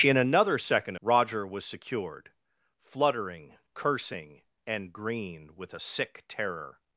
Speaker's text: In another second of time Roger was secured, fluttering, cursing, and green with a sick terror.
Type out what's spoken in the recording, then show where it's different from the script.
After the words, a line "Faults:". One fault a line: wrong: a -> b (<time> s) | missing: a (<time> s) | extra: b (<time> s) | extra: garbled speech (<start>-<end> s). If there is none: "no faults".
In another second Roger was secured, fluttering, cursing, and green with a sick terror.
Faults:
missing: of time (0.9 s)